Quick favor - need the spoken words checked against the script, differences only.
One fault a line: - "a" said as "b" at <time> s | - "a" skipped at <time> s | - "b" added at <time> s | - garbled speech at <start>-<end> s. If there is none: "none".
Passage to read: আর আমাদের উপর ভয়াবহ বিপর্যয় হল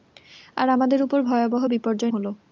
none